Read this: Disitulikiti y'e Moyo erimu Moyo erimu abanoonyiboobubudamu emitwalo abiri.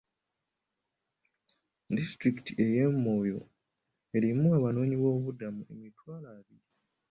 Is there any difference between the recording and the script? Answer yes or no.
yes